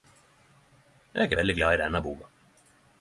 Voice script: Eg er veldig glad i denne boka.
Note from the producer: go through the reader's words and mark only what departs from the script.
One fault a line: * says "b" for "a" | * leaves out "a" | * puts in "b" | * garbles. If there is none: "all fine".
all fine